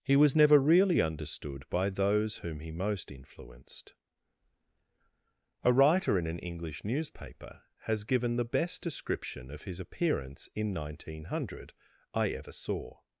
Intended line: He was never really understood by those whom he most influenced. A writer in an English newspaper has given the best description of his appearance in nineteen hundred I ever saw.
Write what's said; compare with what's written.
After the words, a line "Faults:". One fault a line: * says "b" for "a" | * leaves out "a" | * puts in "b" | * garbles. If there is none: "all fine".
He was never really understood by those whom he most influenced. A writer in an English newspaper has given the best description of his appearance in nineteen hundred I ever saw.
Faults:
all fine